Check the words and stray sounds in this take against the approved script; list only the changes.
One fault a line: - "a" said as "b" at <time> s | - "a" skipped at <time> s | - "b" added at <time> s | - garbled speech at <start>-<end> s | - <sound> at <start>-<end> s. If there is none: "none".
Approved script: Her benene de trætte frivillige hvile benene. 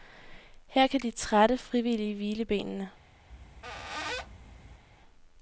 - "benene" said as "kan" at 0.9 s
- squeak at 3.3-4.8 s